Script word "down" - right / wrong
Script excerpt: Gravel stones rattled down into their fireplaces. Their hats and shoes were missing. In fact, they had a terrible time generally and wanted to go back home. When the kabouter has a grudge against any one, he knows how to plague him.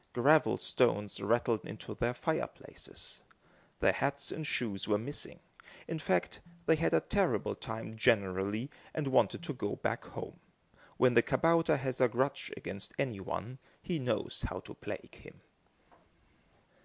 wrong